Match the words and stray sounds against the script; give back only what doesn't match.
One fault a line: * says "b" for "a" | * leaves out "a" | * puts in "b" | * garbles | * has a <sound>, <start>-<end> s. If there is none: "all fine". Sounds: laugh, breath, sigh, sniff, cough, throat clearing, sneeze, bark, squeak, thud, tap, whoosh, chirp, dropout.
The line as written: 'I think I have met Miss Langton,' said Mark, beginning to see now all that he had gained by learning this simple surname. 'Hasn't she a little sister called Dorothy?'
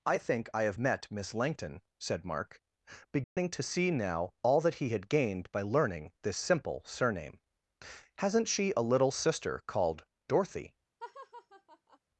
* has a dropout, 3.2-3.4 s
* has a laugh, 11.0-12.0 s